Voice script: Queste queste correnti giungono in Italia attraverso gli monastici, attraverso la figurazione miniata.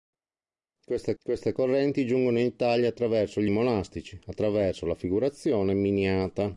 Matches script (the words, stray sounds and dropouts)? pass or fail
pass